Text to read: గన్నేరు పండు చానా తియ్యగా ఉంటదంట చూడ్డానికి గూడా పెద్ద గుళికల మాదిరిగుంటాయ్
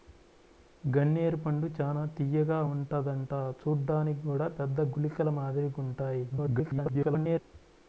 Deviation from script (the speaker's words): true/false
true